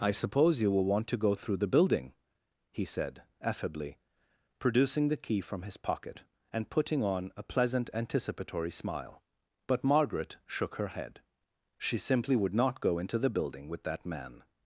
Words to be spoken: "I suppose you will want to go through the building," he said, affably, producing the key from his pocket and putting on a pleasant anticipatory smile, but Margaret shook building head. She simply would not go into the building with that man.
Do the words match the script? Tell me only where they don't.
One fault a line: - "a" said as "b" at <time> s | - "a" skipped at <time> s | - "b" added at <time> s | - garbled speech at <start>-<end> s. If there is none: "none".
- "building" said as "her" at 10.8 s